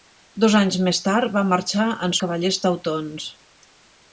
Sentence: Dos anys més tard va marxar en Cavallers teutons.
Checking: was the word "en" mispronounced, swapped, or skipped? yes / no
no